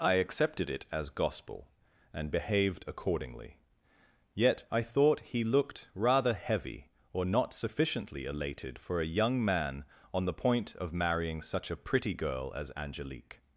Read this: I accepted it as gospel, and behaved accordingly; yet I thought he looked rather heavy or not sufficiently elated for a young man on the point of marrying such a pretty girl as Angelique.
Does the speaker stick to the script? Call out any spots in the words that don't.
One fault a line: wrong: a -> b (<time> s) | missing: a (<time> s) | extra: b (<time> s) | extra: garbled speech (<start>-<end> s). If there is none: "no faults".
no faults